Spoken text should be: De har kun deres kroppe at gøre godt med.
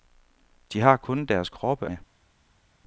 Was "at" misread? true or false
true